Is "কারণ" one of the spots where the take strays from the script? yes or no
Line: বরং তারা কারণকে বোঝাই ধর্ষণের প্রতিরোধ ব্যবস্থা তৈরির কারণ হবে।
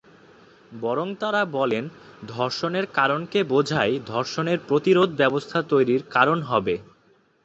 no